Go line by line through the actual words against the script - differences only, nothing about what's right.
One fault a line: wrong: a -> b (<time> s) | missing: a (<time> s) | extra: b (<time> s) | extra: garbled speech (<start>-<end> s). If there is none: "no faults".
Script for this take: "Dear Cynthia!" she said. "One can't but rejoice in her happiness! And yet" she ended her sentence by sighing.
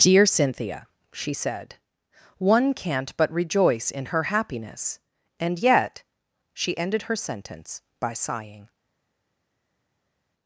no faults